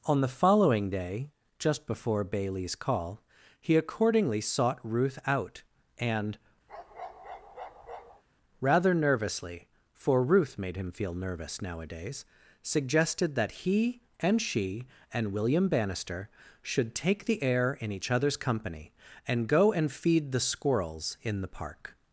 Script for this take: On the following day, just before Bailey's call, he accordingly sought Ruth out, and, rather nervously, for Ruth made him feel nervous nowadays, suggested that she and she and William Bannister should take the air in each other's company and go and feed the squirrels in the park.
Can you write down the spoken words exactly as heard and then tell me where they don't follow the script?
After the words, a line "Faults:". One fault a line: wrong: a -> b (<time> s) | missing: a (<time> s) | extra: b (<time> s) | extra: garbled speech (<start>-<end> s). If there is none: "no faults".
On the following day, just before Bailey's call, he accordingly sought Ruth out, and, rather nervously, for Ruth made him feel nervous nowadays, suggested that he and she and William Bannister should take the air in each other's company and go and feed the squirrels in the park.
Faults:
wrong: she -> he (13.6 s)